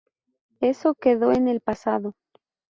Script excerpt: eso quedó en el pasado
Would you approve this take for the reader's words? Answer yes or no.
yes